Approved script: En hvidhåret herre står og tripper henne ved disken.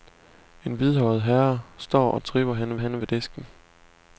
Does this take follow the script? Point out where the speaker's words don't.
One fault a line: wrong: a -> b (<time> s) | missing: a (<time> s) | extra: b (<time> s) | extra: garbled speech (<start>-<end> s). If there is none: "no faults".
extra: henne (2.8 s)